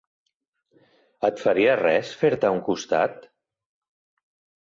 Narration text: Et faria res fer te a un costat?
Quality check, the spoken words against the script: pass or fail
pass